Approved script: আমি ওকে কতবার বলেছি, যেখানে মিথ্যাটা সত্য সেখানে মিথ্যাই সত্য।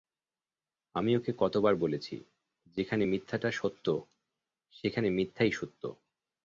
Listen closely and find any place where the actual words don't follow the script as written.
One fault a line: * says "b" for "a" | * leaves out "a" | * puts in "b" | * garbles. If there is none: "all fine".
all fine